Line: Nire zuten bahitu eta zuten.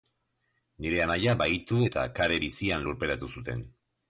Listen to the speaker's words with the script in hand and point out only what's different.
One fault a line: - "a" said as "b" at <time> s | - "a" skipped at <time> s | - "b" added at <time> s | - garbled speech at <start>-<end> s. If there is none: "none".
- "zuten" said as "anaia" at 1.0 s
- "kare bizian lurperatu" added at 2.2 s